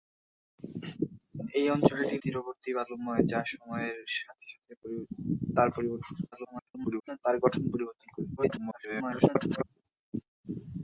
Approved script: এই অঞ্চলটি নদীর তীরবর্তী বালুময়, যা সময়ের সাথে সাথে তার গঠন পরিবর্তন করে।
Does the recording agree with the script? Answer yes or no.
no